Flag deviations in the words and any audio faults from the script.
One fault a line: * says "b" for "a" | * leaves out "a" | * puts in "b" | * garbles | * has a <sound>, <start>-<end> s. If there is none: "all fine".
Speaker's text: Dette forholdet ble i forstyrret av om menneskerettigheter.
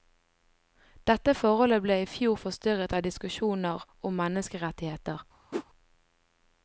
* puts in "fjor"
* puts in "diskusjoner"
* has a whoosh, 5.5-5.7 s